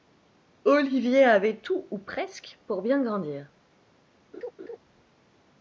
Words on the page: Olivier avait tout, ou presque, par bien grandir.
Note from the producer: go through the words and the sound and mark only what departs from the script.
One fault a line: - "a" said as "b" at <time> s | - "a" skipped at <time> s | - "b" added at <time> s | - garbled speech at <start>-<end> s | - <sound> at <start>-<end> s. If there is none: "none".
- "par" said as "pour" at 2.6 s
- laugh at 4.3-4.8 s